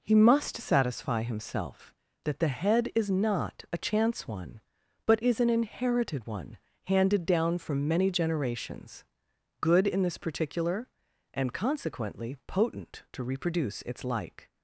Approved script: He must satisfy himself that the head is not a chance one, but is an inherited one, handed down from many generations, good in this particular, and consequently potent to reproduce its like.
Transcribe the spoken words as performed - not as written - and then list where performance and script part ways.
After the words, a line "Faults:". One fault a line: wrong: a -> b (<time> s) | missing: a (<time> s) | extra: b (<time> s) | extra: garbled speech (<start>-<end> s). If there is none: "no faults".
He must satisfy himself that the head is not a chance one, but is an inherited one, handed down from many generations, good in this particular, and consequently potent to reproduce its like.
Faults:
no faults